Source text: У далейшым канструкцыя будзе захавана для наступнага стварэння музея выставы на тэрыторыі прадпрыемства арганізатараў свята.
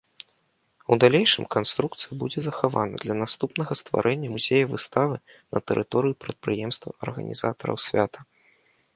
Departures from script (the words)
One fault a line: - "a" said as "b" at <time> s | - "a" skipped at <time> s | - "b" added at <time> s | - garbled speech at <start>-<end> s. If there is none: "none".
none